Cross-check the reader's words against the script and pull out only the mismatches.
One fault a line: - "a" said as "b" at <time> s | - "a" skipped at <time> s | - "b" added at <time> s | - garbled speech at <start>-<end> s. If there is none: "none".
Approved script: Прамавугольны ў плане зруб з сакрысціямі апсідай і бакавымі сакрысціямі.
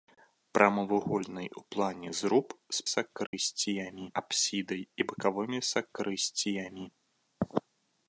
none